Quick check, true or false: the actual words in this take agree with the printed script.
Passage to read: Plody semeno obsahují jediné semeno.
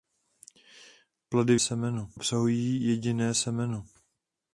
true